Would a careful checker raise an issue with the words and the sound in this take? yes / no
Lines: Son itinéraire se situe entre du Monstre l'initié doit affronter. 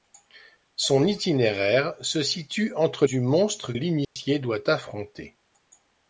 yes